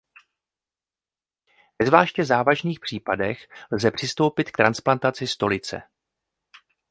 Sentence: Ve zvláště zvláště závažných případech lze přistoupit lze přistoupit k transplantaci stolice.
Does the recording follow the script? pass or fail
fail